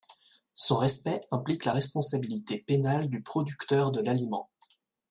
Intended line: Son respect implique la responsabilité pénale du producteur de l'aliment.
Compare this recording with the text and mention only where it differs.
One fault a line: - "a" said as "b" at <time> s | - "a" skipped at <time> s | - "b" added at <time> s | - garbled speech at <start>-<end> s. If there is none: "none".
none